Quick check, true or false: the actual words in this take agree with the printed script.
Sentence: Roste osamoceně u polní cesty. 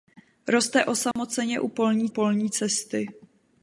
false